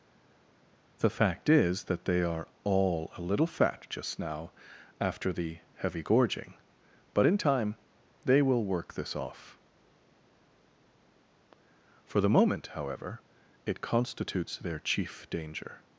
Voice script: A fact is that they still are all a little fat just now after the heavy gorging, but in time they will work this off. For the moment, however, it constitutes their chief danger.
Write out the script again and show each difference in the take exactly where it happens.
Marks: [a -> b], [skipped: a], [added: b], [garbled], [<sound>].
[A -> The] fact is that they [skipped: still] are all a little fat just now after the heavy gorging, but in time they will work this off. For the moment, however, it constitutes their chief danger.